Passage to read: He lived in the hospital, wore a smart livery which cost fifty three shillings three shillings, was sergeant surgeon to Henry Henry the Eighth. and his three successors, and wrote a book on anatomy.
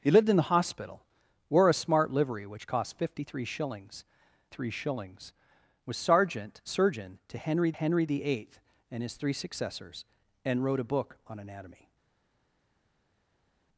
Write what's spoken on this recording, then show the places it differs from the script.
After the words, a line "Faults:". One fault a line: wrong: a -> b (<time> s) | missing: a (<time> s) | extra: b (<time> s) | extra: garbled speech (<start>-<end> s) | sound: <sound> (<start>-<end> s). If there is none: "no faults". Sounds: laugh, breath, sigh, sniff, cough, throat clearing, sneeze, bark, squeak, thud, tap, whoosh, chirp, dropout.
He lived in the hospital, wore a smart livery which cost fifty three shillings three shillings, was sergeant surgeon to Henry Henry the Eighth. and his three successors, and wrote a book on anatomy.
Faults:
no faults